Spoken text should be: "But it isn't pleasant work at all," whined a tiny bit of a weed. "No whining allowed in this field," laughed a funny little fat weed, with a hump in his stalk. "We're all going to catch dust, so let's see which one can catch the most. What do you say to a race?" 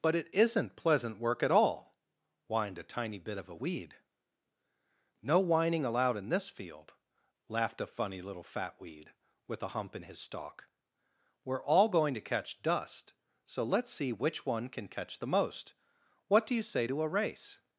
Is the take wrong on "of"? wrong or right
right